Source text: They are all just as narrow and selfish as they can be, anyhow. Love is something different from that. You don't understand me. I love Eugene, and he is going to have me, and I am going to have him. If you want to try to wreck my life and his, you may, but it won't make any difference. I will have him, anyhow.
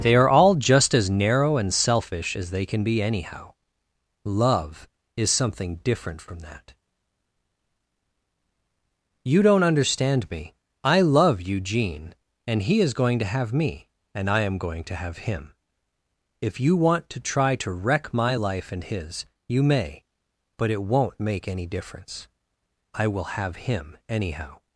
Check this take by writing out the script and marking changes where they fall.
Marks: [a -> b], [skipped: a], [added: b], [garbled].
They are all just as narrow and selfish as they can be, anyhow. Love is something different from that. You don't understand me. I love Eugene, and he is going to have me, and I am going to have him. If you want to try to wreck my life and his, you may, but it won't make any difference. I will have him, anyhow.